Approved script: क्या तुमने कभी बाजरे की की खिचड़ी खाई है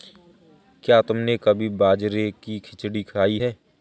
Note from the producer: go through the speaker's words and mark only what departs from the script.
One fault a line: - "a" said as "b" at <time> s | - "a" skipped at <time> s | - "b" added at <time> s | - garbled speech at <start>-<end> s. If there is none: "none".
- "की" skipped at 2.6 s